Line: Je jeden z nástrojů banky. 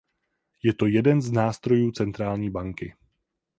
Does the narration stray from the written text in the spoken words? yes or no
yes